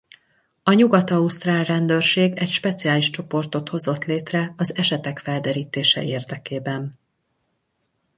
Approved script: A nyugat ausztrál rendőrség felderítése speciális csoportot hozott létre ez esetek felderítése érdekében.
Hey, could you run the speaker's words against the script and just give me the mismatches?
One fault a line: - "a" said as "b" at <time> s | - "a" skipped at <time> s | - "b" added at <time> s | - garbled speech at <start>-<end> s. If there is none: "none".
- "felderítése" said as "egy" at 2.4 s
- "ez" said as "az" at 4.6 s